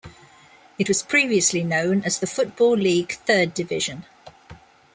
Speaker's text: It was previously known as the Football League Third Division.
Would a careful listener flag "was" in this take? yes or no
no